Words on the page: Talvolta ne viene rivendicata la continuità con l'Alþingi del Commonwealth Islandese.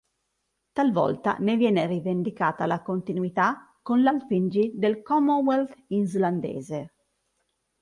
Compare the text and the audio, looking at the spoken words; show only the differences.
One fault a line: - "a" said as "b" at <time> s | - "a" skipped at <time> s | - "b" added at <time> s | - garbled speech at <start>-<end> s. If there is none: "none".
none